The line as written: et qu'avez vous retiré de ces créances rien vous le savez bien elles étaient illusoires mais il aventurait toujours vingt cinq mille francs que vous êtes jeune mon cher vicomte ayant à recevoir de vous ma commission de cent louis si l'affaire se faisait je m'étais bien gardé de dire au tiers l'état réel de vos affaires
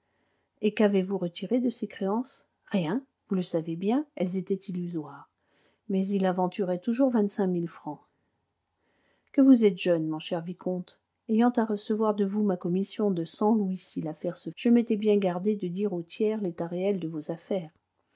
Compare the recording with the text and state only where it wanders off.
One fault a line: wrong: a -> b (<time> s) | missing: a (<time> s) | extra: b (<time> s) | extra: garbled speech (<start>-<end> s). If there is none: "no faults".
missing: faisait (14.5 s)